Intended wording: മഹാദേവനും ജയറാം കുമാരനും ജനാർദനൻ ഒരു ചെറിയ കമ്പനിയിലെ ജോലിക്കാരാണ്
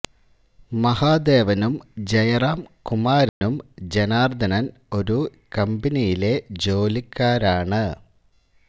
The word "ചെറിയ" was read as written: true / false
false